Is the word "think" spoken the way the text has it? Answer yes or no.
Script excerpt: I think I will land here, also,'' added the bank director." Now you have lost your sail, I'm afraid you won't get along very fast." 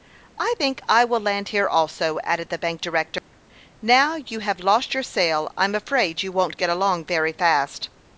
yes